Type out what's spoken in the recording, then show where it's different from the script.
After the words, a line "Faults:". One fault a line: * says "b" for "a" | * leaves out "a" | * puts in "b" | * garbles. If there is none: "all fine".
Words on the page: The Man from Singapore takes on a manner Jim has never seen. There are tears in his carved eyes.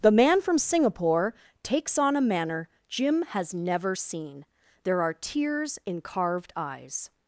The Man from Singapore takes on a manner Jim has never seen. There are tears in carved eyes.
Faults:
* leaves out "his"